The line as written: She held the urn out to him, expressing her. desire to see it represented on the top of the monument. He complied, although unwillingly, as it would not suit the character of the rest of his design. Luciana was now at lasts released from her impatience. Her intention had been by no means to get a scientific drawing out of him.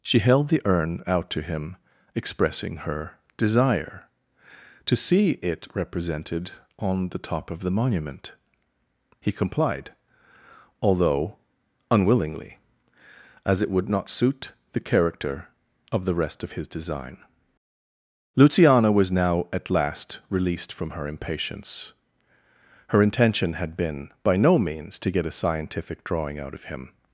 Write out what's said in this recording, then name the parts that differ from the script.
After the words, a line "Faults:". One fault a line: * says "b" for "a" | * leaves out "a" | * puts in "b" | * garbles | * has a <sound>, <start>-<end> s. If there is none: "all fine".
She held the urn out to him, expressing her. desire to see it represented on the top of the monument. He complied, although unwillingly, as it would not suit the character of the rest of his design. Luciana was now at last released from her impatience. Her intention had been by no means to get a scientific drawing out of him.
Faults:
* says "last" for "lasts"